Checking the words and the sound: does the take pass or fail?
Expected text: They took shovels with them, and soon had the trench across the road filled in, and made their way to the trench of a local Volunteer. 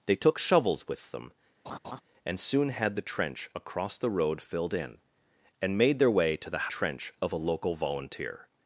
fail